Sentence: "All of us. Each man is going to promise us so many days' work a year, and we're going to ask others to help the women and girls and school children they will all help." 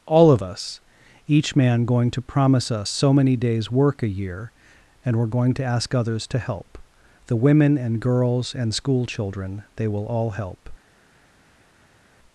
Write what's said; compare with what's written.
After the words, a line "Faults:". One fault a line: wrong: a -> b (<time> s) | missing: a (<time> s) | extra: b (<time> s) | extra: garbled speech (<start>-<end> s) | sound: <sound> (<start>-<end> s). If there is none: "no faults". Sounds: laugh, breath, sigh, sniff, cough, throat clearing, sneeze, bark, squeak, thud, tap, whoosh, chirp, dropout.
"All of us. Each man going to promise us so many days' work a year, and we're going to ask others to help the women and girls and school children they will all help."
Faults:
missing: is (1.8 s)